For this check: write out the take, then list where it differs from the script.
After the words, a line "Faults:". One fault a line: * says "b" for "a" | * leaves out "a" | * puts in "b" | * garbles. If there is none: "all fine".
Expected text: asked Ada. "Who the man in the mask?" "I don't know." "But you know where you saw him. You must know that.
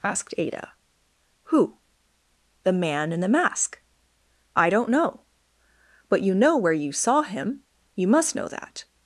asked Ada. "Who the man in the mask?" "I don't know." "But you know where you saw him. You must know that.
Faults:
all fine